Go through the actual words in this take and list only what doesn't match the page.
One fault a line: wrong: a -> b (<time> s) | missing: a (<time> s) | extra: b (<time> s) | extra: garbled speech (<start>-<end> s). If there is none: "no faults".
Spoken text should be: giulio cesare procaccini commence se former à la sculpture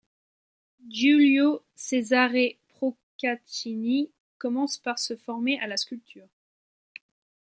extra: par (4.8 s)